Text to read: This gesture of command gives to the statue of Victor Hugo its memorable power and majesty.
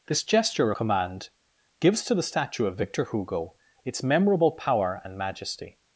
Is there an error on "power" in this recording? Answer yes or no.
no